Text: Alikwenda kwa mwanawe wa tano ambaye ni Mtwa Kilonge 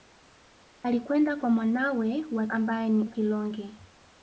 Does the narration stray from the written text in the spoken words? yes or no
yes